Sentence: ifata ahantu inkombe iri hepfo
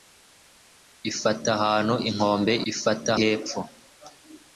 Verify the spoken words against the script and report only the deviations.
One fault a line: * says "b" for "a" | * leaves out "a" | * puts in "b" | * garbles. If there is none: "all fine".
* says "ifata" for "iri"